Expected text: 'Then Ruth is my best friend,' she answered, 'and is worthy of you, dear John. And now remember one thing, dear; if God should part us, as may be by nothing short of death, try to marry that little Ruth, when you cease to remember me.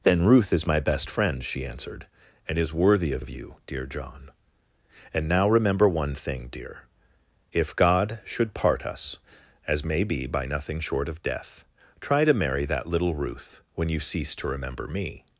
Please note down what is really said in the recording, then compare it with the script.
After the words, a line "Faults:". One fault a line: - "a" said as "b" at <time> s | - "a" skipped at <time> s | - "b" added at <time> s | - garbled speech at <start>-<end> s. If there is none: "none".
'Then Ruth is my best friend,' she answered, 'and is worthy of of you, dear John. And now remember one thing, dear; if God should part us, as may be by nothing short of death, try to marry that little Ruth, when you cease to remember me.
Faults:
- "of" added at 3.2 s